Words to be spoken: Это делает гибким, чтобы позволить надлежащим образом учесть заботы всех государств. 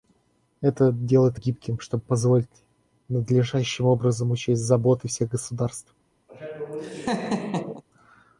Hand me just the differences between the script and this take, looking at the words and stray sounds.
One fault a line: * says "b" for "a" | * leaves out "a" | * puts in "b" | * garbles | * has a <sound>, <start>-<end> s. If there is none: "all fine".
* has a laugh, 6.3-7.8 s